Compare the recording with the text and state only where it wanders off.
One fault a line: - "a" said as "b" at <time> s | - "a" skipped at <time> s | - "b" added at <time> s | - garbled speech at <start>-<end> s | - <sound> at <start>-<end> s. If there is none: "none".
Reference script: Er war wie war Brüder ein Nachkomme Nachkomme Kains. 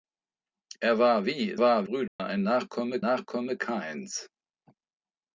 - dropout at 2.1-2.2 s